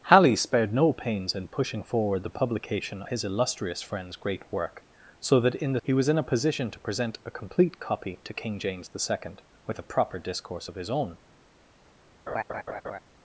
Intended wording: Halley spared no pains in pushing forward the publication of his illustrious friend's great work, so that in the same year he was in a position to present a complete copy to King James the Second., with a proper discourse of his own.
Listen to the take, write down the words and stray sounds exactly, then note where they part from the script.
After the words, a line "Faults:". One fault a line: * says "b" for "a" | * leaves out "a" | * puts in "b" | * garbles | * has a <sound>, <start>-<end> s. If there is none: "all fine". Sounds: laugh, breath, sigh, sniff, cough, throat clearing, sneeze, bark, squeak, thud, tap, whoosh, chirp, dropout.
Halley spared no pains in pushing forward the publication his illustrious friend's great work, so that in the he was in a position to present a complete copy to King James the Second., with a proper discourse of his own.
Faults:
* leaves out "of"
* leaves out "same year"
* has a laugh, 12.3-13.0 s